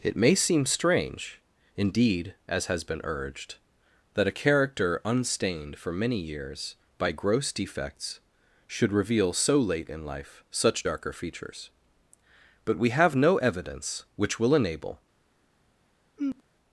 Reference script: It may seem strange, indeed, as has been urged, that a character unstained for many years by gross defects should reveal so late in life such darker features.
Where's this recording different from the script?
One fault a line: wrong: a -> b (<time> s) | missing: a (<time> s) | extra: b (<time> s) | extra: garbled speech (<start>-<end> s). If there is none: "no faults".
extra: But we have no evidence which will enable (12.6 s)